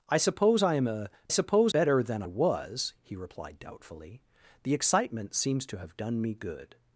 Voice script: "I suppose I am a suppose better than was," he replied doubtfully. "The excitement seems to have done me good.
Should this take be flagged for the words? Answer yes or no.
no